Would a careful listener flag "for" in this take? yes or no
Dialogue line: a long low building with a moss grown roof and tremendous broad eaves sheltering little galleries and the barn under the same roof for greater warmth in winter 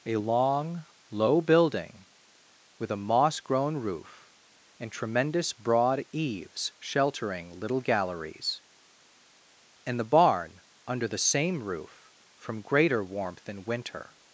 yes